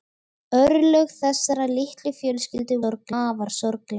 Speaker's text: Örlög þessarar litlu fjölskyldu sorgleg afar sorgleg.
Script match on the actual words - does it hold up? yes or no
yes